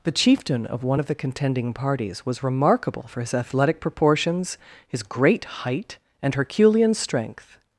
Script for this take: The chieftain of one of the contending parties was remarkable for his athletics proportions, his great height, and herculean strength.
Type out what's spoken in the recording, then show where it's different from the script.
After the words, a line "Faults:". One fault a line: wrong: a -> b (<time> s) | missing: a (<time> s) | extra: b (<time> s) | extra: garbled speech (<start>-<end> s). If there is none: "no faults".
The chieftain of one of the contending parties was remarkable for his athletic proportions, his great height, and herculean strength.
Faults:
wrong: athletics -> athletic (3.3 s)